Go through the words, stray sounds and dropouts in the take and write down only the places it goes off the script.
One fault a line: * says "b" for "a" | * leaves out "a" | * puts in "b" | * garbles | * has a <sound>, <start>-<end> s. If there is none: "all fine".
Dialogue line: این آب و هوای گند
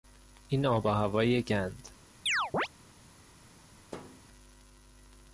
* has a chirp, 2.3-2.7 s
* has a thud, 3.9-4.2 s